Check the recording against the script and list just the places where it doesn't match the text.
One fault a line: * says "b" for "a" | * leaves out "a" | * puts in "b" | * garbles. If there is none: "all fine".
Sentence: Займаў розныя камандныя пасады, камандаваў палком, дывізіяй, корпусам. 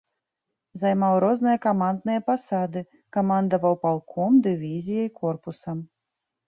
all fine